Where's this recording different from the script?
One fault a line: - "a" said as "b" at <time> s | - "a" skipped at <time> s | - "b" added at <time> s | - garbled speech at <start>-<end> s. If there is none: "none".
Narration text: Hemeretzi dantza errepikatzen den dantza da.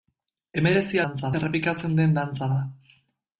none